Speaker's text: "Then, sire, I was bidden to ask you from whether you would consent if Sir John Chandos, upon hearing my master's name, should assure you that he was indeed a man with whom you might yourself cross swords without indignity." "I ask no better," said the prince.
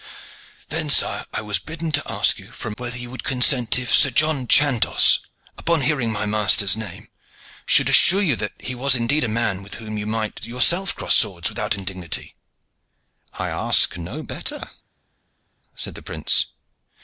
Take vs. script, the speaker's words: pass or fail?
pass